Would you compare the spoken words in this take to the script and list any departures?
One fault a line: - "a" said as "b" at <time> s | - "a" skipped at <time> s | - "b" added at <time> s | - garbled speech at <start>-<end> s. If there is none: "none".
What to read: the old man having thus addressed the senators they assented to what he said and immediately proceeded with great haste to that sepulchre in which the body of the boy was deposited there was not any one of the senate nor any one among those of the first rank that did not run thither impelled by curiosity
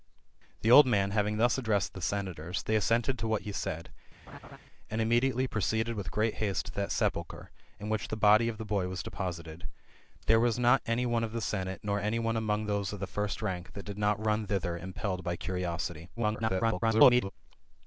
- garbled speech at 16.2-17.3 s